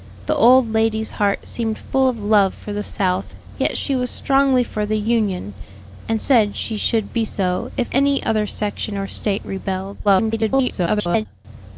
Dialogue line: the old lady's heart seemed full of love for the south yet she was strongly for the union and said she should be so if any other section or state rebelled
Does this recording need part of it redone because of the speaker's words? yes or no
yes